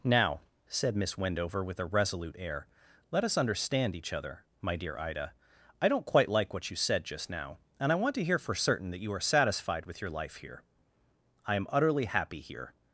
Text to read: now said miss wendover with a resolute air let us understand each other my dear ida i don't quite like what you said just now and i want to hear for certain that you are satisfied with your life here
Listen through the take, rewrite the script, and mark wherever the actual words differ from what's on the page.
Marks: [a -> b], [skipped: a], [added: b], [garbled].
now said miss wendover with a resolute air let us understand each other my dear ida i don't quite like what you said just now and i want to hear for certain that you are satisfied with your life here [added: i am utterly happy here]